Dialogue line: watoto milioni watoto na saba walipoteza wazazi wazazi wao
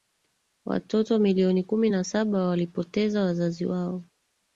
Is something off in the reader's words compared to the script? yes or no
yes